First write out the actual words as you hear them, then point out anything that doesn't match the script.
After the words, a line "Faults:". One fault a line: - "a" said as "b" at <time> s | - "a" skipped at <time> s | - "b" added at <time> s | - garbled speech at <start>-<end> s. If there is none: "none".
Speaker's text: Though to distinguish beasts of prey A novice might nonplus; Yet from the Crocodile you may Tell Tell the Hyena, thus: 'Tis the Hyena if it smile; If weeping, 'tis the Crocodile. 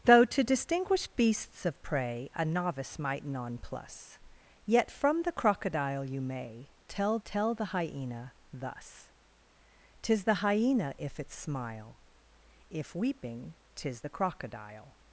Though to distinguish beasts of prey A novice might nonplus; Yet from the Crocodile you may Tell Tell the Hyena, thus: 'Tis the Hyena if it smile; If weeping, 'tis the Crocodile.
Faults:
none